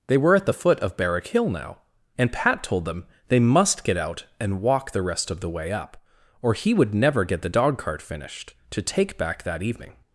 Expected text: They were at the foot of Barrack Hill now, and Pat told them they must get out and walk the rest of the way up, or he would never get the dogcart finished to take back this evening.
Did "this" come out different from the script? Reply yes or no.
yes